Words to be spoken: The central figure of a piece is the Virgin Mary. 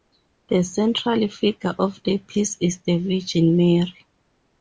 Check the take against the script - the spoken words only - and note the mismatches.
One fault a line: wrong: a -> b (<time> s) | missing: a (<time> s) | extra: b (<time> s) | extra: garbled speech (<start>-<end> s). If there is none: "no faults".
wrong: a -> the (2.0 s)